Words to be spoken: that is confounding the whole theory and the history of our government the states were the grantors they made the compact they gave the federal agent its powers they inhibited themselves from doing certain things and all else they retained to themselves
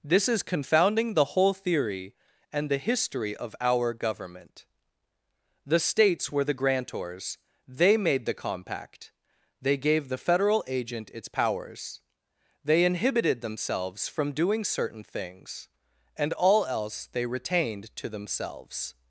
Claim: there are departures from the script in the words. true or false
true